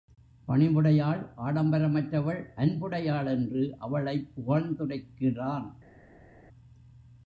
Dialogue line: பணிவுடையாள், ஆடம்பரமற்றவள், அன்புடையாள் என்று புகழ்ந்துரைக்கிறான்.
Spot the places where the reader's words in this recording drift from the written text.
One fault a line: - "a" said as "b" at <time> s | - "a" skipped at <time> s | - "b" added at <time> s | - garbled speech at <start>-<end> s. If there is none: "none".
- "அவளைப்" added at 3.8 s